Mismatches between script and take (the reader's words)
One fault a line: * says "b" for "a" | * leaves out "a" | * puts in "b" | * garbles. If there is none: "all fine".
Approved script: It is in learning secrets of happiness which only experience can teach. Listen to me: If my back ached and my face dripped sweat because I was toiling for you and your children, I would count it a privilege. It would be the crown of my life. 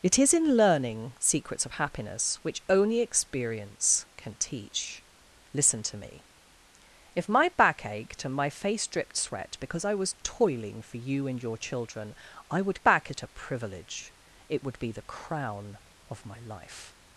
* says "back" for "count"